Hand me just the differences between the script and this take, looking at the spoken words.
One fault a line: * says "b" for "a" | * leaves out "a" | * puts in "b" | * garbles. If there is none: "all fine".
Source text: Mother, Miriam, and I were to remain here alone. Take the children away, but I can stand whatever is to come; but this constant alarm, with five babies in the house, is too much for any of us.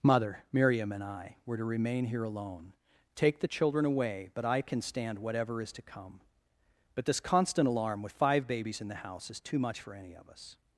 all fine